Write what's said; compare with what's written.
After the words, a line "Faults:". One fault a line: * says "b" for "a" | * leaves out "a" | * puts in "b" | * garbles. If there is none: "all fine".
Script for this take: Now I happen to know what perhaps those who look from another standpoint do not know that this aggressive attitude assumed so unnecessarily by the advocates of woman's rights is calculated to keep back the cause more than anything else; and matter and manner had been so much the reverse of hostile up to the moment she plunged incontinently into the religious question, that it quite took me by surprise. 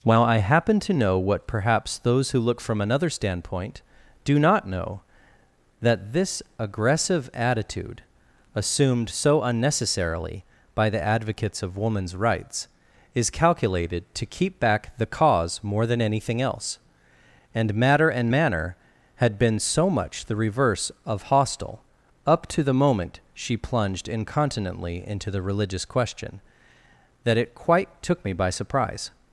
While I happen to know what perhaps those who look from another standpoint do not know that this aggressive attitude assumed so unnecessarily by the advocates of woman's rights is calculated to keep back the cause more than anything else; and matter and manner had been so much the reverse of hostile up to the moment she plunged incontinently into the religious question, that it quite took me by surprise.
Faults:
* says "While" for "Now"